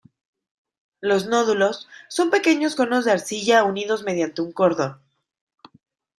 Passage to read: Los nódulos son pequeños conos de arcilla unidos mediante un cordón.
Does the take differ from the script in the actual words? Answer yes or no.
no